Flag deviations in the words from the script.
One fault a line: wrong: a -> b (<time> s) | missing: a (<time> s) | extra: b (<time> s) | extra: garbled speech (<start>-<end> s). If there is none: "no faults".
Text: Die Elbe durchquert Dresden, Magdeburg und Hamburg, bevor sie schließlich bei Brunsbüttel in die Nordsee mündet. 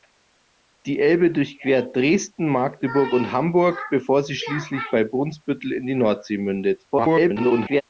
extra: garbled speech (6.9-7.8 s)